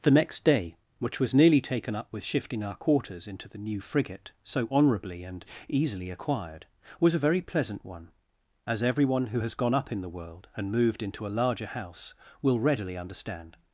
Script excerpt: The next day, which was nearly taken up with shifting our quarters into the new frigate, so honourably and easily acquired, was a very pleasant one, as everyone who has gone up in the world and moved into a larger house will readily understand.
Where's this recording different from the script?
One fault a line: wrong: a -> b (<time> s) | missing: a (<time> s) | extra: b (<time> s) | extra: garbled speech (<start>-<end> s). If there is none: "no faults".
no faults